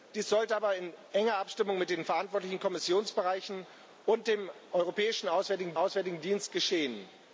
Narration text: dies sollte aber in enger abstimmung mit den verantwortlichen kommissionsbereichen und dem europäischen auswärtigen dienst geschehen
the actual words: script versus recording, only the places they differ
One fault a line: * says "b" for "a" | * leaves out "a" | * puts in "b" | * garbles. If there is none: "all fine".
* puts in "auswärtigen"